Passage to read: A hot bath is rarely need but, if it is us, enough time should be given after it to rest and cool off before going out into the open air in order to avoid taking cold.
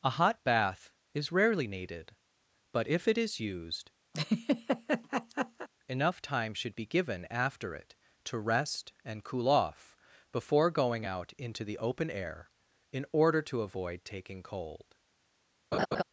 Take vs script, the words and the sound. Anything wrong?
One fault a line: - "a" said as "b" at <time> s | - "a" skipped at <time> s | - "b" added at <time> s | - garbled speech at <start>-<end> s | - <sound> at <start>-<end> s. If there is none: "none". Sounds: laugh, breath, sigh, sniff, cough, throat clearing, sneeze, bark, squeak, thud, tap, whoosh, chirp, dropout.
- "need" said as "needed" at 1.7 s
- "us" said as "used" at 3.4 s
- laugh at 4.1-5.7 s
- laugh at 15.7-16.0 s